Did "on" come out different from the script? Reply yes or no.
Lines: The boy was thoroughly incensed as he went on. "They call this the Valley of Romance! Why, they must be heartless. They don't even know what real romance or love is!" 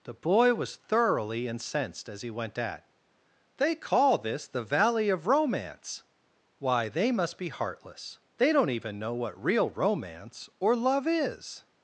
yes